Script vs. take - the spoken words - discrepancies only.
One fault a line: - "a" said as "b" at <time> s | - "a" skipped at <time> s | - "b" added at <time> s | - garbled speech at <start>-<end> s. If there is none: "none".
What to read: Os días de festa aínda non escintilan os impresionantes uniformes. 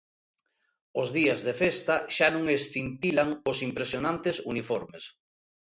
- "aínda" said as "xa" at 2.1 s